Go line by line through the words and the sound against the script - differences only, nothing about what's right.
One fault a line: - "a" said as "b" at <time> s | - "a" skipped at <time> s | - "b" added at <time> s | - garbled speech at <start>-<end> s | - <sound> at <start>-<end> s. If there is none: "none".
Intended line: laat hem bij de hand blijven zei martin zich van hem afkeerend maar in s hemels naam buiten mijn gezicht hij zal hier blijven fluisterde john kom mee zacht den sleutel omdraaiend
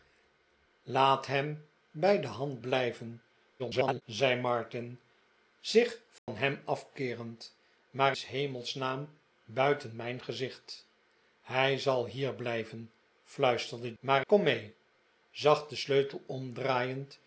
- garbled speech at 3.6-4.0 s
- dropout at 6.2-6.3 s
- "in" skipped at 8.2 s
- "john" said as "maar" at 14.0 s